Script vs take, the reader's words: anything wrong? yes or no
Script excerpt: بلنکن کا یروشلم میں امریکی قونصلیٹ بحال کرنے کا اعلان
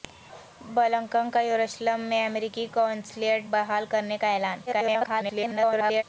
yes